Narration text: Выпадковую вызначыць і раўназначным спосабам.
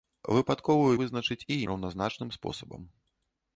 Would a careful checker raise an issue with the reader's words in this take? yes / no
no